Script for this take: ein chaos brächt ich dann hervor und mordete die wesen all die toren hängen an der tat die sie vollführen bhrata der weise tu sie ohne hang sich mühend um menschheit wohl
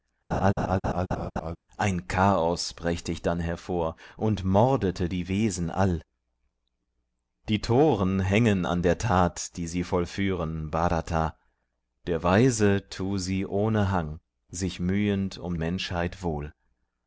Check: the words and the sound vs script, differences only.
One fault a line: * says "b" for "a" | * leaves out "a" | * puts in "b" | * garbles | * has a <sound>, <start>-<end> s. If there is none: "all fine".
* has a laugh, 0.3-1.6 s